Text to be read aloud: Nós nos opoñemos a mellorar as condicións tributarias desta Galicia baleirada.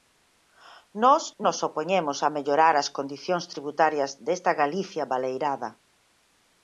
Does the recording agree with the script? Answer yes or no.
yes